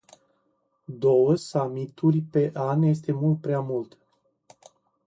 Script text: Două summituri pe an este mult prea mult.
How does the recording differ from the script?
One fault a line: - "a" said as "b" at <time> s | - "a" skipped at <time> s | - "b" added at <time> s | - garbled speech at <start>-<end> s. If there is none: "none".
none